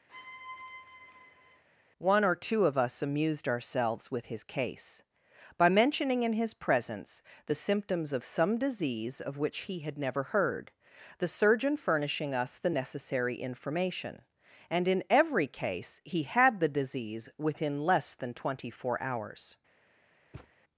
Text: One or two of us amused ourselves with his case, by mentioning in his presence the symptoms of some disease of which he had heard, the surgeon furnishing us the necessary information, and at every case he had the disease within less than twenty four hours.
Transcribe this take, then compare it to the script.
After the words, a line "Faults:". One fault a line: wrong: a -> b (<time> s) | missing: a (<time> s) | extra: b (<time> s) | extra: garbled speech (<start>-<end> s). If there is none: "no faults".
One or two of us amused ourselves with his case, by mentioning in his presence the symptoms of some disease of which he had never heard, the surgeon furnishing us the necessary information, and in every case he had the disease within less than twenty four hours.
Faults:
extra: never (10.0 s)
wrong: at -> in (14.9 s)